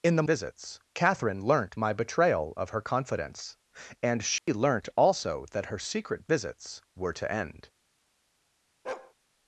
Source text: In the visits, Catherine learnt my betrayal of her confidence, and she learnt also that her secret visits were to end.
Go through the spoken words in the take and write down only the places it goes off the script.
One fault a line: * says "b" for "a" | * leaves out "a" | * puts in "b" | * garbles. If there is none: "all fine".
all fine